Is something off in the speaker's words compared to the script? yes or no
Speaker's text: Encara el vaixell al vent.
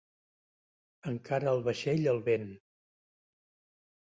no